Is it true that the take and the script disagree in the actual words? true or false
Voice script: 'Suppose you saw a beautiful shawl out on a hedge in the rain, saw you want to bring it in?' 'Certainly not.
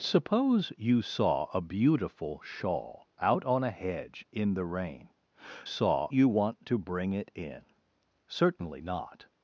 false